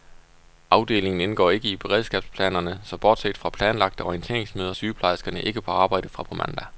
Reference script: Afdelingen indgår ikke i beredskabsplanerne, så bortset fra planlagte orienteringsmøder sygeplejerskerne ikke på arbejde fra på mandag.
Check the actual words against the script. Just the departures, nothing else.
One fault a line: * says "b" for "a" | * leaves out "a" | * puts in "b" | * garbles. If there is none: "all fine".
all fine